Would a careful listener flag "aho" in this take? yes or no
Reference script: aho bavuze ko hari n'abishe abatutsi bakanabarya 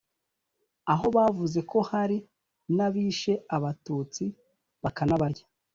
no